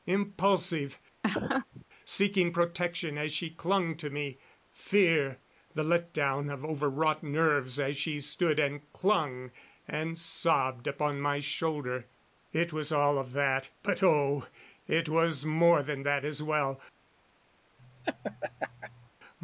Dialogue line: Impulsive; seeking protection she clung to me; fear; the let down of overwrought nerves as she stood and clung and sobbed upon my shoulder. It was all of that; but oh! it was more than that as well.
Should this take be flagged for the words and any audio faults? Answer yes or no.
yes